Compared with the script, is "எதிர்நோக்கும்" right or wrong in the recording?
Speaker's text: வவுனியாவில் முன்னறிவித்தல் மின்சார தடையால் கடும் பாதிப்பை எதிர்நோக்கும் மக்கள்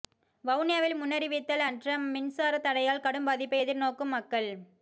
right